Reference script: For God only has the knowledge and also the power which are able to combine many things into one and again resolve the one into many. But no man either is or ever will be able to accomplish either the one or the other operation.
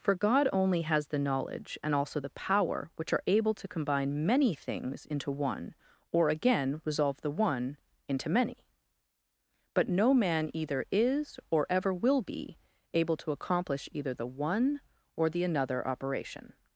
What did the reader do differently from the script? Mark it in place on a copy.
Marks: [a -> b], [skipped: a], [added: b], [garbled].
For God only has the knowledge and also the power which are able to combine many things into one [and -> or] again resolve the one into many. But no man either is or ever will be able to accomplish either the one or the [other -> another] operation.